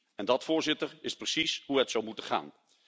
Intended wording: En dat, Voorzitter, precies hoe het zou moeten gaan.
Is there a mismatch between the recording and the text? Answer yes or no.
yes